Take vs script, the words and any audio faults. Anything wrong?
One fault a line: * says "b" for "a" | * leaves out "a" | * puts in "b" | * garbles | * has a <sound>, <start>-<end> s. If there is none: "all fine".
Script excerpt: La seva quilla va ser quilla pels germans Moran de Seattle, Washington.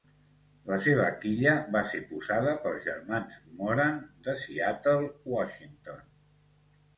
* says "posada" for "quilla"